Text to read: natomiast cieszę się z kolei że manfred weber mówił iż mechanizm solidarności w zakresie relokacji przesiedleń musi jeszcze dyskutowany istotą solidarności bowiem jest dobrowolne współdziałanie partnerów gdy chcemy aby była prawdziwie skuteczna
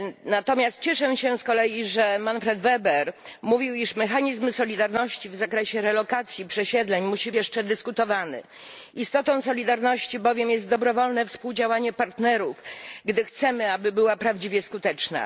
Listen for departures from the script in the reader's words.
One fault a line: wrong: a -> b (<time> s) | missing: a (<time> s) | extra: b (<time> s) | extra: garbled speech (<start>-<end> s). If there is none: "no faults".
no faults